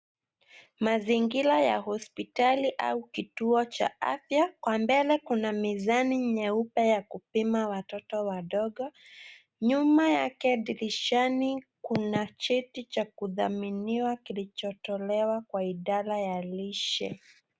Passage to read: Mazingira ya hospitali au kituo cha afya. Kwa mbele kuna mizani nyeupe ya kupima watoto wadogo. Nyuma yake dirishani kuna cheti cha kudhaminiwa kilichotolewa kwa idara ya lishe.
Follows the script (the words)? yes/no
yes